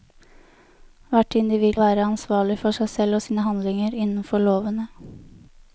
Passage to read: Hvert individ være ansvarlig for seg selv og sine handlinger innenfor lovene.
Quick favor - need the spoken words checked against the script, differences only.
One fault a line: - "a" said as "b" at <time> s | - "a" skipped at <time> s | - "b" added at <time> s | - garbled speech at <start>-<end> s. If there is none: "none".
none